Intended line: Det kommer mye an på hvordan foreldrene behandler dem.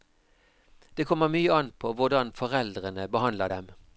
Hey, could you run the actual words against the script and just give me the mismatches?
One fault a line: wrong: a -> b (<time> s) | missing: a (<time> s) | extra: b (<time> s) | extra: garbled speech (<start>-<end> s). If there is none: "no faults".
no faults